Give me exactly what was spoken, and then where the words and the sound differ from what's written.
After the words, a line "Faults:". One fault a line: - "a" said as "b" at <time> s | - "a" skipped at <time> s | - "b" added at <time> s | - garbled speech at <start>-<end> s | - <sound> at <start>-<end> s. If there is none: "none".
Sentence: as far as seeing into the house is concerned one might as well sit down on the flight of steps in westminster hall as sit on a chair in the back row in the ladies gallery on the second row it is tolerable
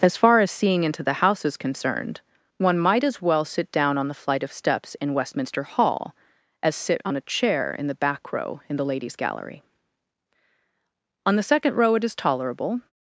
as far as seeing into the house is concerned one might as well sit down on the flight of steps in westminster hall as sit on a chair in the back row in the ladies gallery on the second row it is tolerable
Faults:
none